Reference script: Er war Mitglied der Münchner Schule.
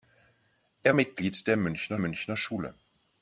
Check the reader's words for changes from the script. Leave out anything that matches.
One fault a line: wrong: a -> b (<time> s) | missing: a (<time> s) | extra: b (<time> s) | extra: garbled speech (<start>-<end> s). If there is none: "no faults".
missing: war (0.9 s)
extra: Münchner (1.9 s)